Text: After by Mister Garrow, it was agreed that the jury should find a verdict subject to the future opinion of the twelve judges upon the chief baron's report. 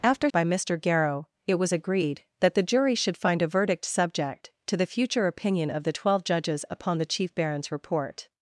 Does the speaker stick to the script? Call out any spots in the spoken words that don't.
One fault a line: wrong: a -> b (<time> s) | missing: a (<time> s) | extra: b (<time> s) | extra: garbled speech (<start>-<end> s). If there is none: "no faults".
no faults